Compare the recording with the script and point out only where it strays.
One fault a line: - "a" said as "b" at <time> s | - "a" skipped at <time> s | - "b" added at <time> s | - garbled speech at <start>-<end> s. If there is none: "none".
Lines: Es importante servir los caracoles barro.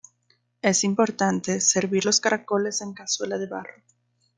- "en cazuela de" added at 2.8 s